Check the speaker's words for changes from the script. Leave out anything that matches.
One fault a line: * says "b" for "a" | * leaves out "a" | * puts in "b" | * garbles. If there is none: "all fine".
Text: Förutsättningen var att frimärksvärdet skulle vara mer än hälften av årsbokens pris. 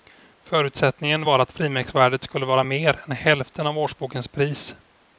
all fine